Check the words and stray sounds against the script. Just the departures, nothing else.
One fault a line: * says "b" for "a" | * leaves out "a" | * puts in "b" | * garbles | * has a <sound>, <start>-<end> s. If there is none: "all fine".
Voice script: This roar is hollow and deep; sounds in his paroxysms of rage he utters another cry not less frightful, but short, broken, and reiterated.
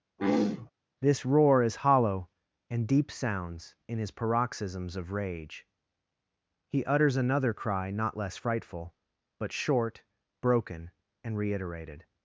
* has a throat clearing, 0.2-0.7 s